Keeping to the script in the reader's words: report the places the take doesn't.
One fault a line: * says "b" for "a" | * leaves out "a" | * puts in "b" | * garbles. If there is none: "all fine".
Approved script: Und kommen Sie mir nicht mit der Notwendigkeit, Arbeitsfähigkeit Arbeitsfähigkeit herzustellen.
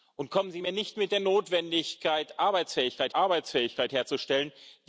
all fine